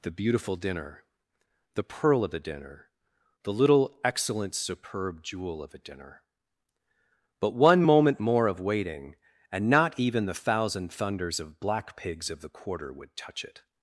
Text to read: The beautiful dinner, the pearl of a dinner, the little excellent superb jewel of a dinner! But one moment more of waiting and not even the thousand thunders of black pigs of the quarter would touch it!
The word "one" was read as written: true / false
true